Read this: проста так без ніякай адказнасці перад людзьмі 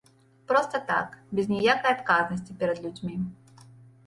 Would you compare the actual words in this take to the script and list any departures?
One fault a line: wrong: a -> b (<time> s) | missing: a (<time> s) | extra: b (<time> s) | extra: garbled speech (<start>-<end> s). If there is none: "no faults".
no faults